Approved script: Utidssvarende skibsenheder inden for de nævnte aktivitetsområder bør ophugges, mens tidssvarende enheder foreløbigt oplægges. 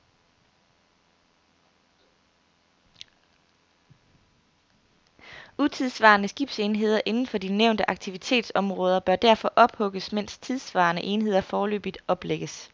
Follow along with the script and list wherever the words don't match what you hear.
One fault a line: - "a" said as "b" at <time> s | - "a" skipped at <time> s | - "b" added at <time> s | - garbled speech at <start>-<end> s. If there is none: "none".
- "derfor" added at 9.2 s